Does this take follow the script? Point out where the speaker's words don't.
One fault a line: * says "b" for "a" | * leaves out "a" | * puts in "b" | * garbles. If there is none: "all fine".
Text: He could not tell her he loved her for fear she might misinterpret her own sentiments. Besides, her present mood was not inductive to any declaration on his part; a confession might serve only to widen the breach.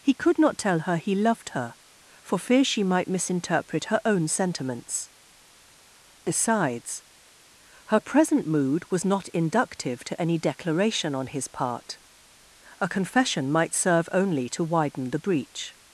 all fine